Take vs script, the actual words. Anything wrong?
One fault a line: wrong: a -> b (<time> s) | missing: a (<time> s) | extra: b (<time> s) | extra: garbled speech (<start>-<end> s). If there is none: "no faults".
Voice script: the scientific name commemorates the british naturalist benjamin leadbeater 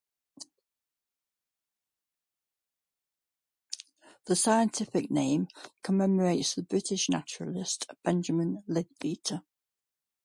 no faults